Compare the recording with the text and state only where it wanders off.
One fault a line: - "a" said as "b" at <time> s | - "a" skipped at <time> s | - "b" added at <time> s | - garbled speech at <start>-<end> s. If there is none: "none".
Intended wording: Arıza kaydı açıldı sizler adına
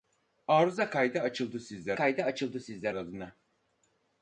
- "kaydı açıldı sizler" added at 1.9 s